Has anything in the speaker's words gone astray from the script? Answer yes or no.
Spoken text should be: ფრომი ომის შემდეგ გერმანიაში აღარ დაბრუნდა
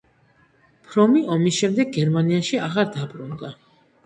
no